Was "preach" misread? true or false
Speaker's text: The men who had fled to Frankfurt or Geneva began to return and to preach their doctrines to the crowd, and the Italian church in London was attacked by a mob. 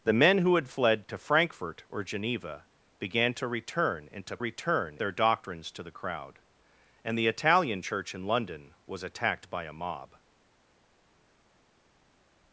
true